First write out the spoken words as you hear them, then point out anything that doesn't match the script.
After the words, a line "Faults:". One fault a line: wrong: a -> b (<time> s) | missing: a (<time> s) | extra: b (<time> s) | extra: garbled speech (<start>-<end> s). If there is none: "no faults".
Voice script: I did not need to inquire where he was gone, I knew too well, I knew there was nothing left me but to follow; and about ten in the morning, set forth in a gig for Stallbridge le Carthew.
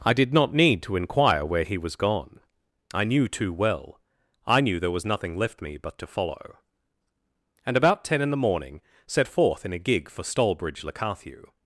I did not need to inquire where he was gone, I knew too well, I knew there was nothing left me but to follow; and about ten in the morning, set forth in a gig for Stallbridge le Carthew.
Faults:
no faults